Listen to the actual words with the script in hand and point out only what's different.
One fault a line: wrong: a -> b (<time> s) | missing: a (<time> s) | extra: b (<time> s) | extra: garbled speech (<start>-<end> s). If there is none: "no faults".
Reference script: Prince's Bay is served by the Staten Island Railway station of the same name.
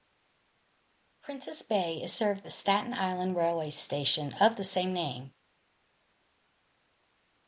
missing: by (2.5 s)